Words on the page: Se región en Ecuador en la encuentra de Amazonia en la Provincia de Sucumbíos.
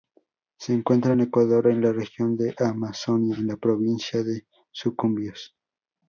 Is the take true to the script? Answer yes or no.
no